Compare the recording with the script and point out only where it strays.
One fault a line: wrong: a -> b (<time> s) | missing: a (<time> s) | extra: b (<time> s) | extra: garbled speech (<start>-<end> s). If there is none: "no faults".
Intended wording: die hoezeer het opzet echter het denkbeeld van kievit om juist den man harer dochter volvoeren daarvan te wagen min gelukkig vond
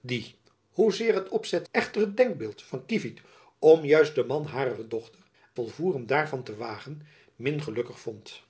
no faults